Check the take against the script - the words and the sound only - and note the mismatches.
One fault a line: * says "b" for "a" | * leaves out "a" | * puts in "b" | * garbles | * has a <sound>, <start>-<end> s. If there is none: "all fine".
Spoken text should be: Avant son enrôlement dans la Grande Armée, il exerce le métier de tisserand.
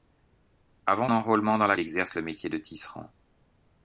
* leaves out "son"
* leaves out "Grande Armée il"